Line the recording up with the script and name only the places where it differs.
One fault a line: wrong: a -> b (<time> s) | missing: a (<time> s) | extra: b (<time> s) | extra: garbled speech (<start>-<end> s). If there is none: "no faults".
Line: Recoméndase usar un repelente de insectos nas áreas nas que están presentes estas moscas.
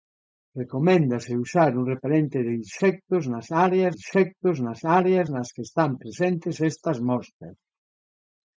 extra: insectos nas áreas (4.0 s)